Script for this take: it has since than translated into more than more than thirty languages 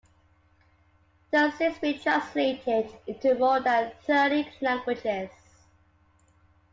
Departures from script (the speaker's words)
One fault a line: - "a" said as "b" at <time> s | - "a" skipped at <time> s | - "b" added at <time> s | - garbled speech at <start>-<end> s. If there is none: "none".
- "than" said as "been" at 1.8 s
- "more than" skipped at 3.9 s